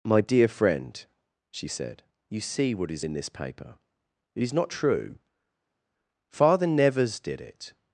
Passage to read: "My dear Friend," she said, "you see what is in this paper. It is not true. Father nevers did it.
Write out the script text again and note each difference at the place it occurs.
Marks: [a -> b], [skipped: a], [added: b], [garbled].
"My dear Friend," she said, "you see what is in this paper. It is not true. Father nevers did it.